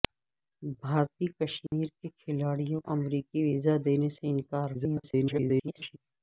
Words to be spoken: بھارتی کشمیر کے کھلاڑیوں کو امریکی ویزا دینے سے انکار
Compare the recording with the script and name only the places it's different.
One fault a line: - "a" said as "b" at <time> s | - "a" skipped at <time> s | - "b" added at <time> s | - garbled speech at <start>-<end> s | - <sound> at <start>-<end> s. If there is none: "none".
- dropout at 1.7-1.7 s
- "کو" skipped at 2.8 s
- garbled speech at 4.7-6.0 s